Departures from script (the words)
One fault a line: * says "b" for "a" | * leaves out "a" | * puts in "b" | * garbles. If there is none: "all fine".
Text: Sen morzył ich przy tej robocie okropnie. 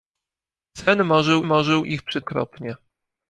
* puts in "morzył"
* leaves out "tej robocie"